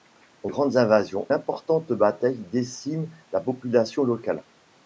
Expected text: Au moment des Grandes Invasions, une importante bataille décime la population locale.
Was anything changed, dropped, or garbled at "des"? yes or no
yes